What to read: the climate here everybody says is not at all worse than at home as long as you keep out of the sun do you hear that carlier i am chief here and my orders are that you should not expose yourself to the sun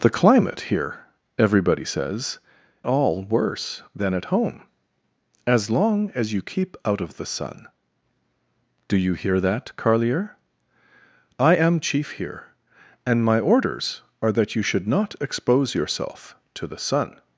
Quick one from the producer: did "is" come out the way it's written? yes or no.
no